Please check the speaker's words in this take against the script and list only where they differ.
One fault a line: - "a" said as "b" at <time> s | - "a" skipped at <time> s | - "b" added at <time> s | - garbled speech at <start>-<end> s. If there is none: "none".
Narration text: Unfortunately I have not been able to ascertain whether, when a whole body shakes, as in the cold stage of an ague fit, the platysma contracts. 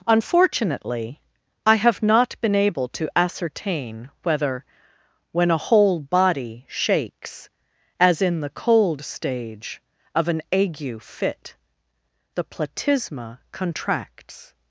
none